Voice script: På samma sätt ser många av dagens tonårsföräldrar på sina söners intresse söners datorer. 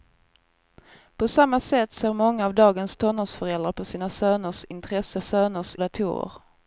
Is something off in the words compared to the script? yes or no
no